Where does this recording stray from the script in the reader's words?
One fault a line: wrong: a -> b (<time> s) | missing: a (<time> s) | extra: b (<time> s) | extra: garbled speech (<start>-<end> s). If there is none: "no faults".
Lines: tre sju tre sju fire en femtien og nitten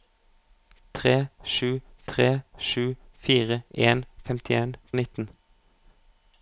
no faults